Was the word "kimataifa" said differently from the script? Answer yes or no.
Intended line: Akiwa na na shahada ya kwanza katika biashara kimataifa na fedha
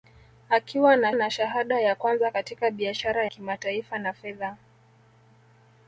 no